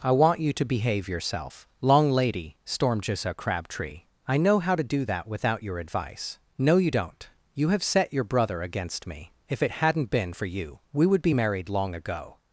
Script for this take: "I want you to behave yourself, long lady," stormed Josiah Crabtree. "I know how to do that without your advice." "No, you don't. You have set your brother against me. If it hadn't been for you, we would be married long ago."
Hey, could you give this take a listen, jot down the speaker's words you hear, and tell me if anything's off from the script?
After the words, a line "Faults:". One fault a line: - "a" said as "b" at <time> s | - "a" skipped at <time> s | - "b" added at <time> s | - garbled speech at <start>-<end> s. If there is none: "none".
"I want you to behave yourself, long lady," stormed Josiah Crabtree. "I know how to do that without your advice." "No, you don't. You have set your brother against me. If it hadn't been for you, we would be married long ago."
Faults:
none